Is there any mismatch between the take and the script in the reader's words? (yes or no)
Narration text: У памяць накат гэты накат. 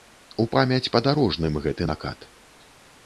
yes